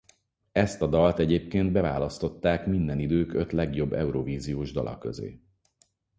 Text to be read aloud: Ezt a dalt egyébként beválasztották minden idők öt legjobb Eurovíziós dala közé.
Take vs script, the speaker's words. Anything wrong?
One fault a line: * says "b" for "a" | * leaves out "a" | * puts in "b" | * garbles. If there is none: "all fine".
all fine